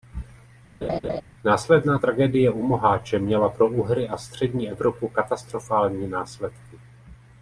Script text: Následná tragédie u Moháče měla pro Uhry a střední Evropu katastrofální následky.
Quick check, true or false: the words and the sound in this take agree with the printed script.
false